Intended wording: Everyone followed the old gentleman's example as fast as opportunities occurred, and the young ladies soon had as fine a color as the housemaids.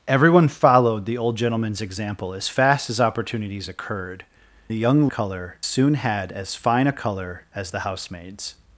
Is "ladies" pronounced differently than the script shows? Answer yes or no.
yes